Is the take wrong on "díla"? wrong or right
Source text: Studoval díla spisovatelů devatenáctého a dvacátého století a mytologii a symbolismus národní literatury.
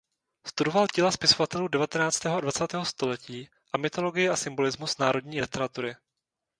right